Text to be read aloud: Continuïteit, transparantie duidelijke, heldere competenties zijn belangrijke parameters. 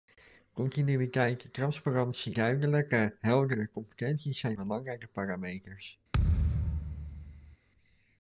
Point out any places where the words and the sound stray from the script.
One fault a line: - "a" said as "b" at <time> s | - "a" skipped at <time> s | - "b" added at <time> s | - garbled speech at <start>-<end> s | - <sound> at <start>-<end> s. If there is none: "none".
- thud at 6.1-7.6 s